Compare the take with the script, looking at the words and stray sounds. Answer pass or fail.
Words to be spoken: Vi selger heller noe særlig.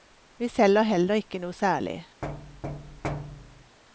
fail